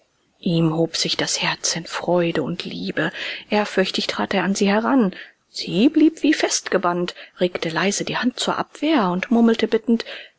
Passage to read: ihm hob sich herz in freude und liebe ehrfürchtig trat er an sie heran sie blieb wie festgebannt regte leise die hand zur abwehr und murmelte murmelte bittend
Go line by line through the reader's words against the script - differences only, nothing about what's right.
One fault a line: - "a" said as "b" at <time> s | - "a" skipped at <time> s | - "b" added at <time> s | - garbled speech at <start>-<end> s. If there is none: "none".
- "das" added at 1.1 s
- "murmelte" skipped at 9.7 s